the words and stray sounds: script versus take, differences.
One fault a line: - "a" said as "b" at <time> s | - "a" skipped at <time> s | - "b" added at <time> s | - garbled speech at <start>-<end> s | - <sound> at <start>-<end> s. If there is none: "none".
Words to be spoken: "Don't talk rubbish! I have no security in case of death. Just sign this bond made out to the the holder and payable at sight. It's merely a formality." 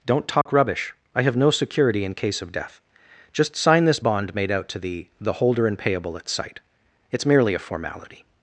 - dropout at 0.4-0.5 s